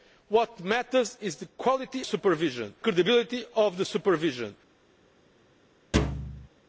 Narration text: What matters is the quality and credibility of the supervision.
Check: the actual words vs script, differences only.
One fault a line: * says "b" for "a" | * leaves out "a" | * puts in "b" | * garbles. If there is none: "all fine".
* says "supervision" for "and"